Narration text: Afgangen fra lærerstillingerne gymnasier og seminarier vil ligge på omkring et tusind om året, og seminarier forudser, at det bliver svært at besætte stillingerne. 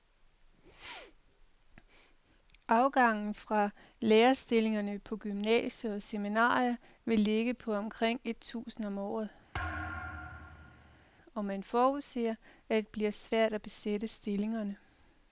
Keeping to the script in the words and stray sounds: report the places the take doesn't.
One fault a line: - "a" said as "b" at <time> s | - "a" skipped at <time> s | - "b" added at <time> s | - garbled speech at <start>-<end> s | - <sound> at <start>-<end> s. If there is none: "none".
- "på" added at 5.0 s
- thud at 9.5-11.1 s
- "seminarier" said as "man" at 11.4 s